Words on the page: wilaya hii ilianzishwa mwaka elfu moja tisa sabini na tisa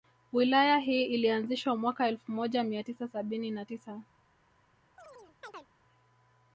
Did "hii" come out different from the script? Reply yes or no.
no